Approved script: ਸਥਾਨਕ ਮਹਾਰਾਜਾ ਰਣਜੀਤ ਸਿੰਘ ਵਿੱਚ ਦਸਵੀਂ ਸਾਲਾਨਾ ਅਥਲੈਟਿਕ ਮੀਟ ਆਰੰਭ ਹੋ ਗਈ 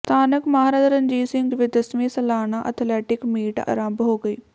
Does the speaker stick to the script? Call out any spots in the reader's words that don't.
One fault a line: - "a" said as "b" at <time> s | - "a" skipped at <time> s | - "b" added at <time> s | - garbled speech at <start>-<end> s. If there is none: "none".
none